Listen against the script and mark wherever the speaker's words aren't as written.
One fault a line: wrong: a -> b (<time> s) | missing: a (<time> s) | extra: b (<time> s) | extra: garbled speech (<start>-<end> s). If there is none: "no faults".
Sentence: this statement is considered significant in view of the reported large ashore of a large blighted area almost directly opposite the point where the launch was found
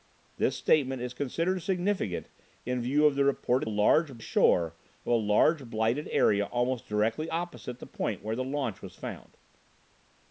no faults